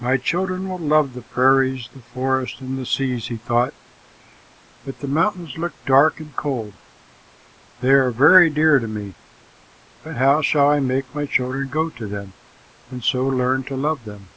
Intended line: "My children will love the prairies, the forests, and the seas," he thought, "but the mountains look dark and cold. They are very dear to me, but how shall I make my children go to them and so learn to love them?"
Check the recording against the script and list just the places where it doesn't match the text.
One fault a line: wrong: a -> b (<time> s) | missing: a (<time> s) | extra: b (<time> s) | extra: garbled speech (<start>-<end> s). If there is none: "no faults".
no faults